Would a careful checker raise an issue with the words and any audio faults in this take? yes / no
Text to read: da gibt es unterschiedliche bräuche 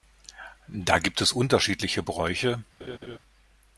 yes